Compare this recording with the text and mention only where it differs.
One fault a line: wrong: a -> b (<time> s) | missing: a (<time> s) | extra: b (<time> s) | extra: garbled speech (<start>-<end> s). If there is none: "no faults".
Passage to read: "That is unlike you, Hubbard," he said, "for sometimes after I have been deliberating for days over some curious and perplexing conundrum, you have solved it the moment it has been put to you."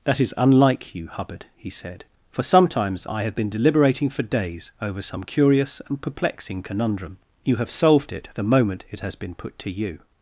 missing: after (3.0 s)